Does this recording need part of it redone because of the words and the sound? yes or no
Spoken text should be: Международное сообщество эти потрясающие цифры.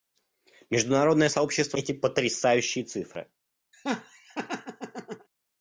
yes